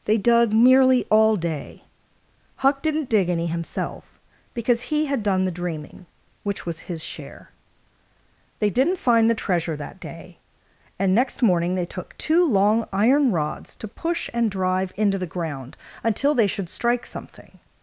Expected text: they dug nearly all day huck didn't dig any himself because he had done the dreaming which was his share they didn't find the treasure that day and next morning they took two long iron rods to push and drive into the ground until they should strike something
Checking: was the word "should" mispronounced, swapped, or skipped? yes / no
no